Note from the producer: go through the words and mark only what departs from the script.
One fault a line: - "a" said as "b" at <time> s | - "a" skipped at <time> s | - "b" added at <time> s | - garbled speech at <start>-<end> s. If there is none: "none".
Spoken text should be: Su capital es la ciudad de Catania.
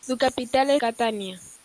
- "la ciudad de" skipped at 0.8 s